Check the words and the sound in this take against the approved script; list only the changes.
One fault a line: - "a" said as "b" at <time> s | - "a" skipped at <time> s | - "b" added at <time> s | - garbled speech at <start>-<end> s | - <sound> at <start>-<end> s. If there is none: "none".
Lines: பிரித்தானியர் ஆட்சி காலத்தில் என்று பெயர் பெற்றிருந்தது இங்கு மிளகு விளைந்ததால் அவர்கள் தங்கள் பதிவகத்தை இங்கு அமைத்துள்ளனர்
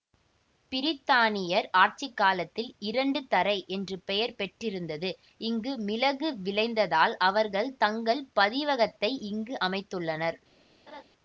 - "இரண்டு தறை" added at 2.9 s
- laugh at 10.9-11.0 s